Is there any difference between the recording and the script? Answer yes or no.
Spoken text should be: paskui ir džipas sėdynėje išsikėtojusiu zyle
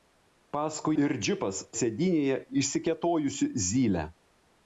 no